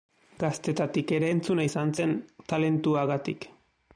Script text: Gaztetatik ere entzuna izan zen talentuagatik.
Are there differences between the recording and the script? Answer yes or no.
no